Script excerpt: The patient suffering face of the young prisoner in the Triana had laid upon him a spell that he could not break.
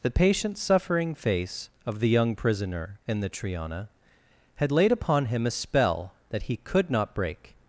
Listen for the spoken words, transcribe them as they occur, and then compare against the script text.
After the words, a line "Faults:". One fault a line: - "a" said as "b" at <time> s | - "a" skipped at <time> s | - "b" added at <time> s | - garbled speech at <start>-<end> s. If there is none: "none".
The patient suffering face of the young prisoner in the Triana had laid upon him a spell that he could not break.
Faults:
none